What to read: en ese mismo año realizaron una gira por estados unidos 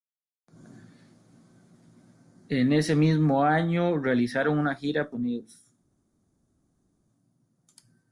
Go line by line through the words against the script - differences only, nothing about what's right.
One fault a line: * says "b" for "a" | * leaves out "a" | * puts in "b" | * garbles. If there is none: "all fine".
* leaves out "por estados"